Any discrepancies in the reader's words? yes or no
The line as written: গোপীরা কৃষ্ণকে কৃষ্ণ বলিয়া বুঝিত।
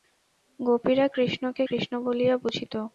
no